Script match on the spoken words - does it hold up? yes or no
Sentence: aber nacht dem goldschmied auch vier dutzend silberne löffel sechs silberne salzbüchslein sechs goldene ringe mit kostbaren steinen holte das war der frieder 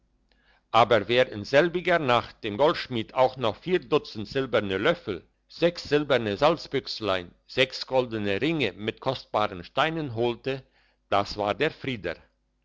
no